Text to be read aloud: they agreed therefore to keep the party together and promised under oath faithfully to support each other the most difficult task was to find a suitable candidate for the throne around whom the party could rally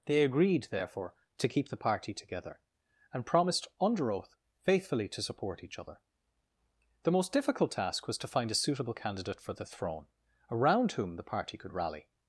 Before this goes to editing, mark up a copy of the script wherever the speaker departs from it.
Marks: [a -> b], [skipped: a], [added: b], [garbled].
they agreed therefore to keep the party together and promised under oath faithfully to support each other the most difficult task was to find a suitable candidate for the throne around whom the party could rally